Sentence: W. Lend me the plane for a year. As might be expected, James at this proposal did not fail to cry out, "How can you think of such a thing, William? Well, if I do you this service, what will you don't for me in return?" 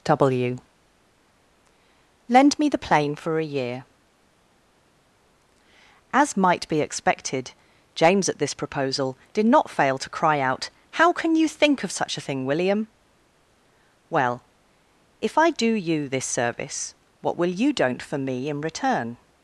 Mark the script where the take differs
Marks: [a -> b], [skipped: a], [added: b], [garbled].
W. Lend me the plane for a year. As might be expected, James at this proposal did not fail to cry out, "How can you think of such a thing, William? Well, if I do you this service, what will you don't for me in return?"